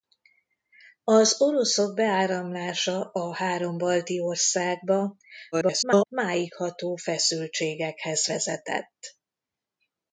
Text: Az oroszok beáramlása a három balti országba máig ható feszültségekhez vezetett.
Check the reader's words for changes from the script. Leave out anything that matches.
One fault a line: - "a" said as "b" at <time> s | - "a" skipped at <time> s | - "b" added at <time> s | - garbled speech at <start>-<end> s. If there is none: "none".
- garbled speech at 5.5-6.1 s